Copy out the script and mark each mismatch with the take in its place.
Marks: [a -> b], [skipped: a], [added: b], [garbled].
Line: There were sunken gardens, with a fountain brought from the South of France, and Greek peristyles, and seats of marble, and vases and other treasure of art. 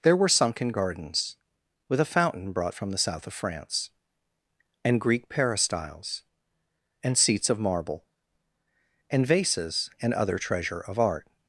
There were sunken gardens, with a fountain brought from the South of France, and Greek peristyles, and seats of marble, and vases and other treasure of art.